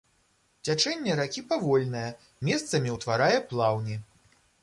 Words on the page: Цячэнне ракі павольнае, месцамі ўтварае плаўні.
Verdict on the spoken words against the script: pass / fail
pass